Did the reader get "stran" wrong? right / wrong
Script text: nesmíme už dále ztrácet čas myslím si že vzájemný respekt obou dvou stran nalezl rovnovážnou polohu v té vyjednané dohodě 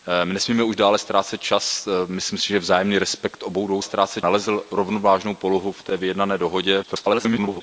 wrong